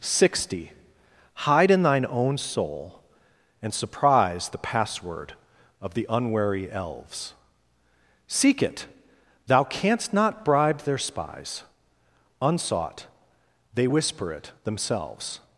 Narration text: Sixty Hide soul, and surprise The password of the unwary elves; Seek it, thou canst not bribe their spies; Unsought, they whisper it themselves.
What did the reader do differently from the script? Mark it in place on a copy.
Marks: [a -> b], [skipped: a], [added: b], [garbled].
Sixty Hide [added: in thine own] soul, and surprise The password of the unwary elves; Seek it, thou canst not bribe their spies; Unsought, they whisper it themselves.